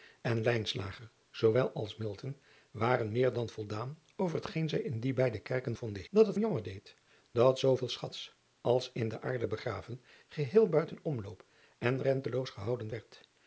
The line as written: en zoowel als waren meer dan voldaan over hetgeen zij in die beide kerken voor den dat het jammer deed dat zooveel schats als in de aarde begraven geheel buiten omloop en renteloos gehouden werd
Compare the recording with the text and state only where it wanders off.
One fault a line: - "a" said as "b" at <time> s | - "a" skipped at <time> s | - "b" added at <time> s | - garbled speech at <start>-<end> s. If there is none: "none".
none